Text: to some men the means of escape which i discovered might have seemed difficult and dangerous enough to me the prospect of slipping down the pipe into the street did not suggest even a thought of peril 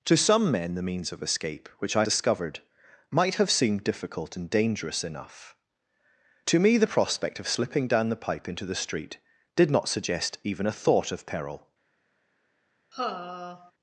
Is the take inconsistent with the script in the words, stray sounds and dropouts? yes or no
yes